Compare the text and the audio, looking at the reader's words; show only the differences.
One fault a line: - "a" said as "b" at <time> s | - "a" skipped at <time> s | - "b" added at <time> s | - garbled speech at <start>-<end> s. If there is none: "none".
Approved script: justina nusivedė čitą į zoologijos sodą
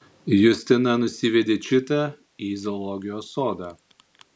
none